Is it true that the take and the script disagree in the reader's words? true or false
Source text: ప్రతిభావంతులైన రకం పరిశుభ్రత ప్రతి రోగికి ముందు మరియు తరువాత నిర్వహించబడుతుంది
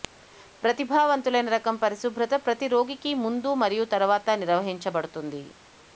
false